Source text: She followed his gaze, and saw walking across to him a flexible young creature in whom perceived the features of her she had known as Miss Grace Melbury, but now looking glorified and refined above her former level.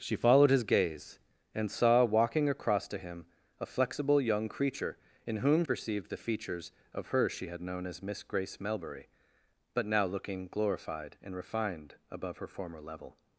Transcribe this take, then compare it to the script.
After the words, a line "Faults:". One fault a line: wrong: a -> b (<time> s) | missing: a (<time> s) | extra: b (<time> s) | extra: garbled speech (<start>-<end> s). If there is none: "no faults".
She followed his gaze, and saw walking across to him a flexible young creature in whom perceived the features of her she had known as Miss Grace Melbury, but now looking glorified and refined above her former level.
Faults:
no faults